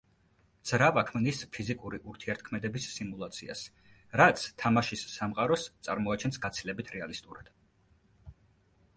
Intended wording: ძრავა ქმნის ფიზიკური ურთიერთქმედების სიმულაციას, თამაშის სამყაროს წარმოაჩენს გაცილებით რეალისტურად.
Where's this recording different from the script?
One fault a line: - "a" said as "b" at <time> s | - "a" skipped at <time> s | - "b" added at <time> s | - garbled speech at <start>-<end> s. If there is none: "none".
- "რაც" added at 4.2 s